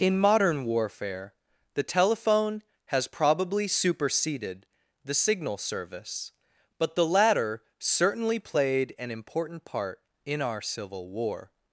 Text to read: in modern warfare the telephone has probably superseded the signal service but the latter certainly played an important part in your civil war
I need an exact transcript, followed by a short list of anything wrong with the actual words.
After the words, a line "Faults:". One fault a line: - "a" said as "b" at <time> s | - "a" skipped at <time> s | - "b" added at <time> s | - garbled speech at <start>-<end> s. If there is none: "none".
in modern warfare the telephone has probably superseded the signal service but the latter certainly played an important part in our civil war
Faults:
- "your" said as "our" at 10.4 s